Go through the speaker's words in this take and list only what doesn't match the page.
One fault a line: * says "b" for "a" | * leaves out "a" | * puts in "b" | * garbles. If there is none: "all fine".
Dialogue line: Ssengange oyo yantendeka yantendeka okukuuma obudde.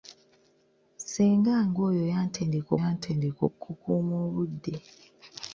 all fine